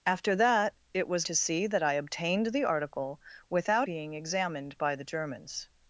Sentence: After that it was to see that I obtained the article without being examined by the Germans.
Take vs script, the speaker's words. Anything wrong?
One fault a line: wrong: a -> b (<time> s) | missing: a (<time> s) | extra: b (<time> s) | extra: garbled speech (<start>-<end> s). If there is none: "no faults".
no faults